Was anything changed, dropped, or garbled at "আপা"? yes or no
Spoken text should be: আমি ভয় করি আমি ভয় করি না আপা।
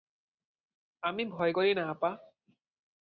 no